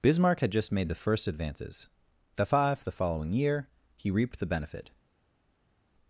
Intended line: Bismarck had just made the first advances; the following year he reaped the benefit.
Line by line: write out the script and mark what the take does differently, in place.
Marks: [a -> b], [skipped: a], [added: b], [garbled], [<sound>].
Bismarck had just made the first advances; the [added: five the] following year he reaped the benefit.